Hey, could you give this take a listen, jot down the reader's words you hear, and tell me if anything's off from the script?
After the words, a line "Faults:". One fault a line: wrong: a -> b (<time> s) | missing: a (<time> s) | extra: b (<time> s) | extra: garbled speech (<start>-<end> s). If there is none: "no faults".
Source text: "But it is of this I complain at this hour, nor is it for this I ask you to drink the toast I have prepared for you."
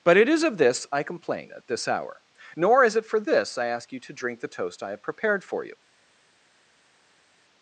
"But it is of this I complain at this hour, nor is it for this I ask you to drink the toast I have prepared for you."
Faults:
no faults